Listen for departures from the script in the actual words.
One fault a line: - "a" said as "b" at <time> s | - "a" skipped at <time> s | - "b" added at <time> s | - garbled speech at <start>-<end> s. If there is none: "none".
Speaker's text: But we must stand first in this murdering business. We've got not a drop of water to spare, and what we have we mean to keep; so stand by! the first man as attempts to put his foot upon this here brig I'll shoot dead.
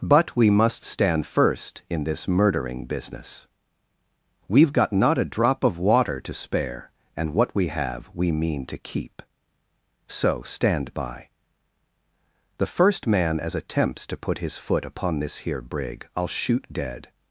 none